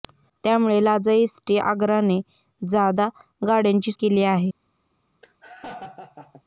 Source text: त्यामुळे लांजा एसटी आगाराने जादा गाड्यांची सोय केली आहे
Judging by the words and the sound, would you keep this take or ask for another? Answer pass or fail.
fail